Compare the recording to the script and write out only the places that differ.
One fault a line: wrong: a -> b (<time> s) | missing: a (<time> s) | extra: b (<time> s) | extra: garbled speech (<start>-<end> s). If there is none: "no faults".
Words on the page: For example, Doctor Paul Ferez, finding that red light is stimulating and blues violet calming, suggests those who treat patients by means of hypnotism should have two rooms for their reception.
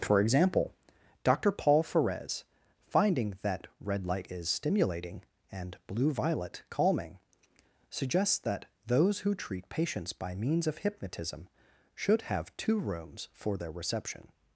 wrong: blues -> blue (5.9 s)
extra: that (8.4 s)